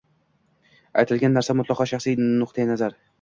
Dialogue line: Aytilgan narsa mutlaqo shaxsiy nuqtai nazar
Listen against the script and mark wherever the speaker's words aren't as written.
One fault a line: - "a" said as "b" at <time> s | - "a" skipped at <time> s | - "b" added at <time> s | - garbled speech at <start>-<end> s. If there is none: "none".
none